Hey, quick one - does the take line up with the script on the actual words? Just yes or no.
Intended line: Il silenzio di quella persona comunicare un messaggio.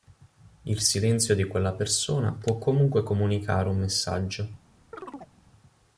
no